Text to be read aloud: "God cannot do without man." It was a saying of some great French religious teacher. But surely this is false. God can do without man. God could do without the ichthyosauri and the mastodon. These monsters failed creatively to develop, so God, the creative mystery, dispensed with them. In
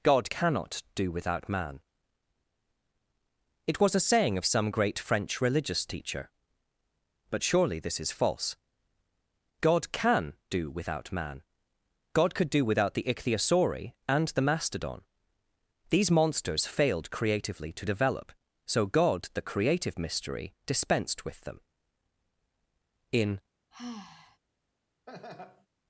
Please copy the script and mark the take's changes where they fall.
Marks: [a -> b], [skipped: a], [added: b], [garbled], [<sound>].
"God cannot do without man." It was a saying of some great French religious teacher. But surely this is false. God can do without man. God could do without the ichthyosauri and the mastodon. These monsters failed creatively to develop, so God, the creative mystery, dispensed with them. In [sigh] [laugh]